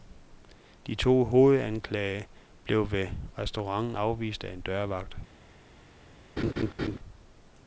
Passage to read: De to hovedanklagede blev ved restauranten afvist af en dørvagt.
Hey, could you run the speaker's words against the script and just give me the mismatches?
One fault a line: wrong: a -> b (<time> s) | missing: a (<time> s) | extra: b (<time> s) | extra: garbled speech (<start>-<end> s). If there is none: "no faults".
no faults